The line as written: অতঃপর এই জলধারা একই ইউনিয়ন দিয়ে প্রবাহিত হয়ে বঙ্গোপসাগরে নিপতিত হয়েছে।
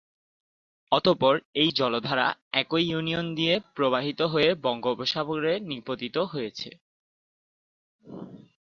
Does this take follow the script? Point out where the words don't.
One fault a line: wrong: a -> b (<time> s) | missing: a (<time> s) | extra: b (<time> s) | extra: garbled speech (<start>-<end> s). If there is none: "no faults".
no faults